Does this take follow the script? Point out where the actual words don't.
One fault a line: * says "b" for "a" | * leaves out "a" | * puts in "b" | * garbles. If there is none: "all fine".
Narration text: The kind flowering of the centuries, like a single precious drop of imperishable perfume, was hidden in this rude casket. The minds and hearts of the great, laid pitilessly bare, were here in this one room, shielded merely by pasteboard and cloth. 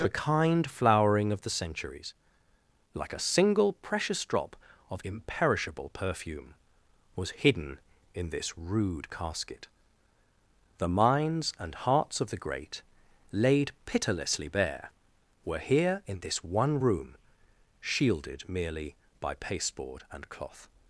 all fine